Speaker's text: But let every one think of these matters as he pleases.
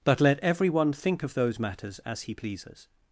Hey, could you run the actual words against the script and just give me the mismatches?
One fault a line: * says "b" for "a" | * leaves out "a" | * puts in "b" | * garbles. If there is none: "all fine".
* says "those" for "these"